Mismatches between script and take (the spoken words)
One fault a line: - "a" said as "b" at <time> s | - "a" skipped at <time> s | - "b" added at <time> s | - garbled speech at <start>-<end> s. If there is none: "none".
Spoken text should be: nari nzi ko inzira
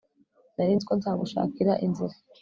- "nzagushakira" added at 1.0 s